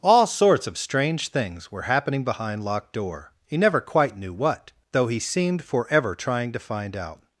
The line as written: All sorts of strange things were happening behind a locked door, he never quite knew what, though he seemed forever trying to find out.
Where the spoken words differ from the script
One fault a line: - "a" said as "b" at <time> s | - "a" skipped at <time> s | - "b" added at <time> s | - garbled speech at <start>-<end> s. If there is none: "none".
- "a" skipped at 2.6 s